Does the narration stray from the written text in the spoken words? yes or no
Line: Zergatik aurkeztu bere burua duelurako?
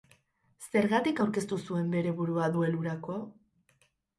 yes